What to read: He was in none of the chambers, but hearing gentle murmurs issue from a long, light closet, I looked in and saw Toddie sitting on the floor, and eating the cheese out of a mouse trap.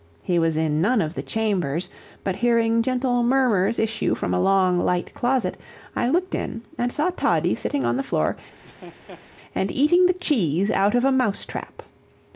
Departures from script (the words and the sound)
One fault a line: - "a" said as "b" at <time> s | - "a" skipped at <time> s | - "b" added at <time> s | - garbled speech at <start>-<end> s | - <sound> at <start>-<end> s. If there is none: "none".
- laugh at 8.6-9.3 s